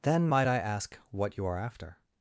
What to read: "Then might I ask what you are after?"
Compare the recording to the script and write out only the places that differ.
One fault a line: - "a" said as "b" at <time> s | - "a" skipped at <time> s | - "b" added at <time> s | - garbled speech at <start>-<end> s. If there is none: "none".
none